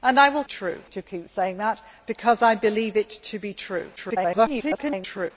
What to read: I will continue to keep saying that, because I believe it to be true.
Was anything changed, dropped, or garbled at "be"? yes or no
no